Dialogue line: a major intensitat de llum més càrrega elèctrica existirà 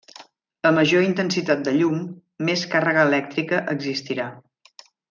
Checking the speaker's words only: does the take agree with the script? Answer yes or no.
yes